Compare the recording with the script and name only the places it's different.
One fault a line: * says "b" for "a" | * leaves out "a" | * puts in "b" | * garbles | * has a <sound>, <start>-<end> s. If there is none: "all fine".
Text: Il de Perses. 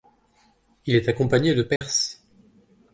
* puts in "est accompagné"
* has a dropout, 1.8-1.8 s